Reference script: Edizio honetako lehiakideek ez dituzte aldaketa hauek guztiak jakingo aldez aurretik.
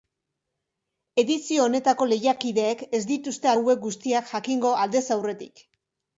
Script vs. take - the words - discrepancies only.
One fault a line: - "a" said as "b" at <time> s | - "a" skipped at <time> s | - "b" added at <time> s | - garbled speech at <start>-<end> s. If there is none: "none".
- "aldaketa" skipped at 3.5 s